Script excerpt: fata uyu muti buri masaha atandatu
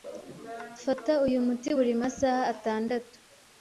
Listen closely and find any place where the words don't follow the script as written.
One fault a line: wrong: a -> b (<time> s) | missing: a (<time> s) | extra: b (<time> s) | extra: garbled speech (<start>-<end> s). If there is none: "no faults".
no faults